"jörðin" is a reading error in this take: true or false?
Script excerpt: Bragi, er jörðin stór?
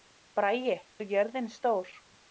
false